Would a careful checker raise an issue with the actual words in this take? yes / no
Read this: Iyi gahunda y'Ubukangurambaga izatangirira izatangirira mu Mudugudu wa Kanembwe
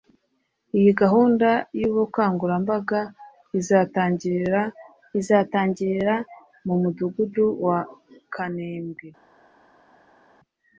no